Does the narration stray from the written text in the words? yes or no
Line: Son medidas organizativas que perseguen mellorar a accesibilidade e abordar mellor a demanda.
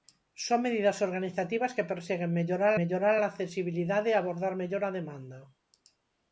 yes